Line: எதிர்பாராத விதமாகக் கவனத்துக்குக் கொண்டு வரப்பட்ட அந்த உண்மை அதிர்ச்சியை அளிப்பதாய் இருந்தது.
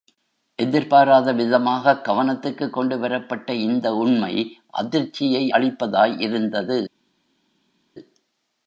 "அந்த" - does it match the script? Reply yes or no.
no